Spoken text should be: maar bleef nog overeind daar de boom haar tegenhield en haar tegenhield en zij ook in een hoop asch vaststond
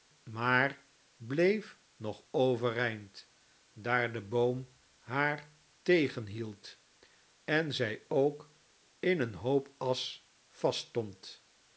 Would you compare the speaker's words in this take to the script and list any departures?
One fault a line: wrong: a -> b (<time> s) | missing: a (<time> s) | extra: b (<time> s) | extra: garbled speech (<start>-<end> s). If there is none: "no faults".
missing: haar tegenhield en (7.7 s)